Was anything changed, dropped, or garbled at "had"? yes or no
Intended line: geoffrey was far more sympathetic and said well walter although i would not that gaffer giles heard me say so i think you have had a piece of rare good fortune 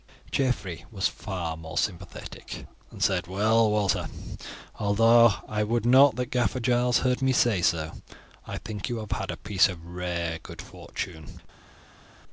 no